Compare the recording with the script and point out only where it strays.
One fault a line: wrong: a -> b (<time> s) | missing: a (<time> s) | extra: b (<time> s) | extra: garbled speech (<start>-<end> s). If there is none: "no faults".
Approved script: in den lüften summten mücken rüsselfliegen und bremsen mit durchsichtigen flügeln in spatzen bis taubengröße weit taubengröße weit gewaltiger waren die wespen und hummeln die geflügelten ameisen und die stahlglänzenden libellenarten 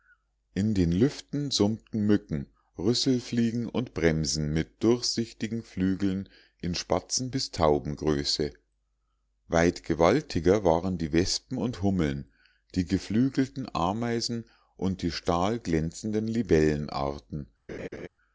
missing: taubengröße weit (9.8 s)